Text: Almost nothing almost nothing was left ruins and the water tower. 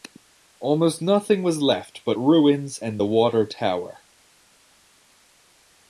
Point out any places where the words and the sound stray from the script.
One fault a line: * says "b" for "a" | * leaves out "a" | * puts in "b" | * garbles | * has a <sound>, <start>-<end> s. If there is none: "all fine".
* leaves out "almost nothing"
* puts in "but"